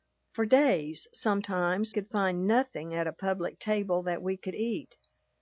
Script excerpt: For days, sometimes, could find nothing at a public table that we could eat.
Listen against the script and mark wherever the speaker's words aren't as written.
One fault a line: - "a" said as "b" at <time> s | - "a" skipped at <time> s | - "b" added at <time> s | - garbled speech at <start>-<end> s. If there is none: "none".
none